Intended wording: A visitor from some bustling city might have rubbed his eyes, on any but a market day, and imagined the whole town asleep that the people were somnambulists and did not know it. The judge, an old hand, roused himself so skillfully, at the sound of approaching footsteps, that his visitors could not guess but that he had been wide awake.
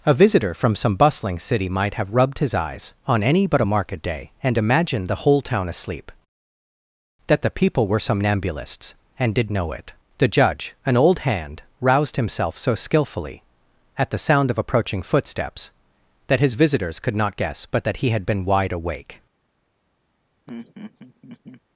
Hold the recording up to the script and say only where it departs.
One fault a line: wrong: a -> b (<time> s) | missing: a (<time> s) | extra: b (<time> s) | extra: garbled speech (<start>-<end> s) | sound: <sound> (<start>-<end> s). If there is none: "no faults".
missing: not (9.5 s)
sound: laugh (20.5-21.6 s)